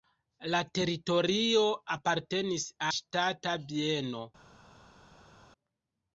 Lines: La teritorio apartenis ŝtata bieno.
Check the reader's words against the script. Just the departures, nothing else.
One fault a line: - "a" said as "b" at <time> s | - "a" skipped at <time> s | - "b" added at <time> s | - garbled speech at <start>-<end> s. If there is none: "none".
none